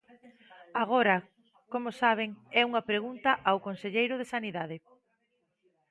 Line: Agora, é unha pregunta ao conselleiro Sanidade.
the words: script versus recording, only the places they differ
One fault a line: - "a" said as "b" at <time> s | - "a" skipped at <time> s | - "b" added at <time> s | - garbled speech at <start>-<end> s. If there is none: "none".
- "como saben" added at 1.7 s
- "de" added at 4.2 s